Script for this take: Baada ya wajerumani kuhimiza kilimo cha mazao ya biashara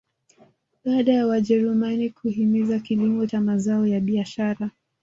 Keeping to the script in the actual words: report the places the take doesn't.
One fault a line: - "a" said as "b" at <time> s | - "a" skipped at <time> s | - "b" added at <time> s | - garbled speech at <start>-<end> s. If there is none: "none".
none